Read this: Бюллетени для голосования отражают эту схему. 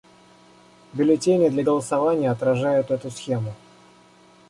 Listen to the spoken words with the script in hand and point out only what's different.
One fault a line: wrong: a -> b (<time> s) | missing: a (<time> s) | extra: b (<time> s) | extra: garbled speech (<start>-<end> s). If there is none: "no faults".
no faults